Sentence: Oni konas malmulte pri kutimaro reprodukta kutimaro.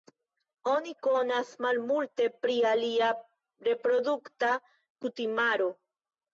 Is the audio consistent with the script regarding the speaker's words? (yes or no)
no